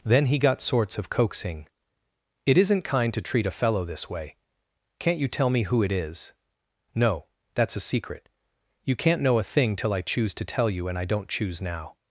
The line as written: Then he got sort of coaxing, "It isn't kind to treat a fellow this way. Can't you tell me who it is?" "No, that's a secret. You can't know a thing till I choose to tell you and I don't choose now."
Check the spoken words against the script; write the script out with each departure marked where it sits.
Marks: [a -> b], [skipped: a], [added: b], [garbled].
Then he got [sort -> sorts] of coaxing, "It isn't kind to treat a fellow this way. Can't you tell me who it is?" "No, that's a secret. You can't know a thing till I choose to tell you and I don't choose now."